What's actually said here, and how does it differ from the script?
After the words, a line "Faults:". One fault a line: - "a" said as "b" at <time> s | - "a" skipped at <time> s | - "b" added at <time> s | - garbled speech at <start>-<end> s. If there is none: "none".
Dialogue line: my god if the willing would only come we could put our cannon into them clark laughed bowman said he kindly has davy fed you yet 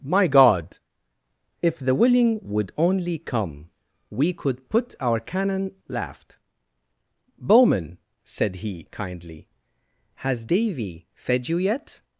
my god if the willing would only come we could put our cannon laughed bowman said he kindly has davy fed you yet
Faults:
- "into them clark" skipped at 5.7 s